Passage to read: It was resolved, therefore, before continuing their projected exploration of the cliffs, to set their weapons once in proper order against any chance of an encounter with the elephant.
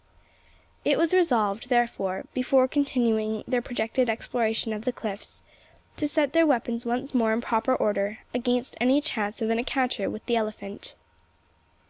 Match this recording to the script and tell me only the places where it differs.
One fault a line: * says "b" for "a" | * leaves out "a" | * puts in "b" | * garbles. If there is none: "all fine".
* puts in "more"